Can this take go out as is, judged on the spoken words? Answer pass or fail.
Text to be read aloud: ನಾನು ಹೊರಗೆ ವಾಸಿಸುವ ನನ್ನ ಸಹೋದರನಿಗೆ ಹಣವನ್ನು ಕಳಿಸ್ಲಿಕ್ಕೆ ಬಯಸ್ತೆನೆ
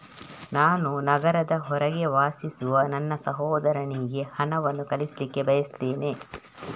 fail